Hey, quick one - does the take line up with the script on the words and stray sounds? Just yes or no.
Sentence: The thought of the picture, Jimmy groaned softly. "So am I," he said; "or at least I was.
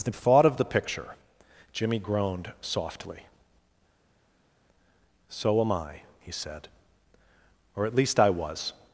yes